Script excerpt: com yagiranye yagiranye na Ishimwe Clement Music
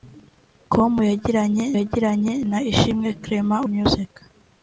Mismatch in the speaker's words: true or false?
false